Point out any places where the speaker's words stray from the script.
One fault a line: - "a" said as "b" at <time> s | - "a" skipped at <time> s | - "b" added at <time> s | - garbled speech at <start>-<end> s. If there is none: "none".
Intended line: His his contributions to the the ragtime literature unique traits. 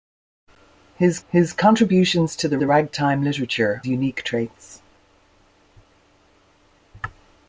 none